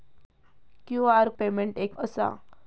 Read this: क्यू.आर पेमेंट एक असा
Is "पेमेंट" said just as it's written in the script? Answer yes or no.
yes